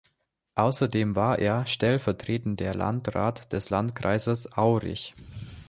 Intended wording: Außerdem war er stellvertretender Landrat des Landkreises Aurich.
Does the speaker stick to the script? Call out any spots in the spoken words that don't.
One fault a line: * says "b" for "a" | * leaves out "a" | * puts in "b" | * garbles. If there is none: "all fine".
all fine